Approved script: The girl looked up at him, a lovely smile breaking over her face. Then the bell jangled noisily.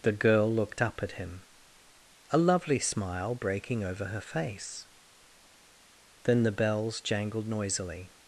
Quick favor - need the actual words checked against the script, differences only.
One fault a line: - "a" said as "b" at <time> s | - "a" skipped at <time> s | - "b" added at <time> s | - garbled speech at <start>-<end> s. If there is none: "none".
- "bell" said as "bells" at 6.5 s